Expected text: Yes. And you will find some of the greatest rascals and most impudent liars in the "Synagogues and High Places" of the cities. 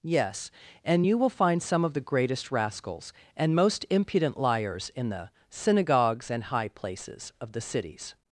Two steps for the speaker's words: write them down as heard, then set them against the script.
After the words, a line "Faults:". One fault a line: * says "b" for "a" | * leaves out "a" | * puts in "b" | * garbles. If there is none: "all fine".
Yes. And you will find some of the greatest rascals and most impudent liars in the "Synagogues and High Places" of the cities.
Faults:
all fine